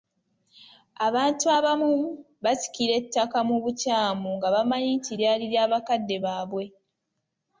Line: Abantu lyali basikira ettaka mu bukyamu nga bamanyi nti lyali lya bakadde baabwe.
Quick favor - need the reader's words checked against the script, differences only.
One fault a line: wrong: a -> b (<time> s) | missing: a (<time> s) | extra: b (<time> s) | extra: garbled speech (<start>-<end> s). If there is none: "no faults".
wrong: lyali -> abamu (1.6 s)